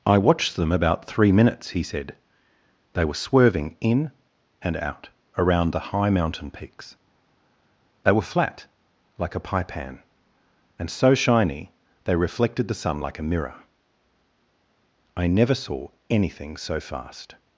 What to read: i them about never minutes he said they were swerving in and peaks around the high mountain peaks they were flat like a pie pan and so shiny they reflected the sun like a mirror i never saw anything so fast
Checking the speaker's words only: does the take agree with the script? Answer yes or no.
no